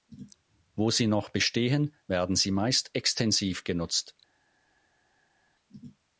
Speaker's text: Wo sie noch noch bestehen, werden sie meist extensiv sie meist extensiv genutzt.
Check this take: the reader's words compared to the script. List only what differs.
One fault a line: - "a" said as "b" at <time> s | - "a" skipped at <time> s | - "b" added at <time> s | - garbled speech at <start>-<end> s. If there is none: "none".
- "noch" skipped at 1.3 s
- "sie meist extensiv" skipped at 3.6 s